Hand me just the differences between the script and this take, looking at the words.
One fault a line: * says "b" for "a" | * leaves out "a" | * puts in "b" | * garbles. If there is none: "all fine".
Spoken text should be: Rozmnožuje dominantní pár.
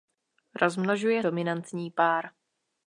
all fine